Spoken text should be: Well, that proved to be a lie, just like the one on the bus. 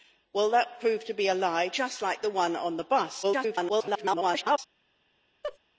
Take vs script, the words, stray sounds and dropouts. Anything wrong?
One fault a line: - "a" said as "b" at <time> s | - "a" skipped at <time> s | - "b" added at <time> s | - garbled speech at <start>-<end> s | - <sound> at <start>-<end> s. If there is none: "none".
- garbled speech at 3.2-4.6 s
- laugh at 5.4-5.6 s